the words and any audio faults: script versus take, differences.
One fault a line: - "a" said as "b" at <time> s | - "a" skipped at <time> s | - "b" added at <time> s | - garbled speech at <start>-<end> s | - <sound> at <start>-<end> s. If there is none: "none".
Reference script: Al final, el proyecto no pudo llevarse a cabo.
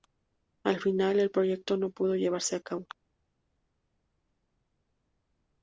none